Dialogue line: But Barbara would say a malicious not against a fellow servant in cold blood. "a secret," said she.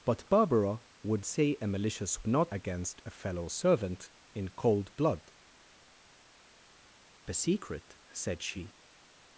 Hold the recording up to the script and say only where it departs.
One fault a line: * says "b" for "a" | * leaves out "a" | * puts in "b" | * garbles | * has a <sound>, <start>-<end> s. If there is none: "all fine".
all fine